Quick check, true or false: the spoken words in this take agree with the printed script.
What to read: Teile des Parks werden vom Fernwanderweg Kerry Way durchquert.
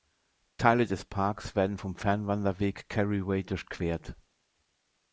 true